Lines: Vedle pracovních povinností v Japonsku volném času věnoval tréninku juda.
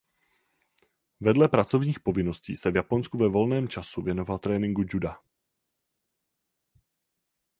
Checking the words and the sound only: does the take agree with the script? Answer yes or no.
no